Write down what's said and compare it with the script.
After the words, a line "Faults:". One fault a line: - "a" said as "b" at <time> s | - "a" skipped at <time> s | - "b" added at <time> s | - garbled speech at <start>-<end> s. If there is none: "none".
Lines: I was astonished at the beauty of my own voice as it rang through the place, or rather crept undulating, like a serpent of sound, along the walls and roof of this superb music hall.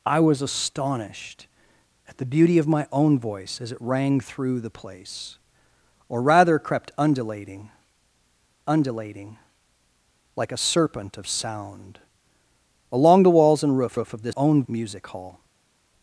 I was astonished at the beauty of my own voice as it rang through the place, or rather crept undulating undulating, like a serpent of sound, along the walls and roof roof of this own music hall.
Faults:
- "undulating" added at 8.7 s
- "roof" added at 13.9 s
- "superb" said as "own" at 14.4 s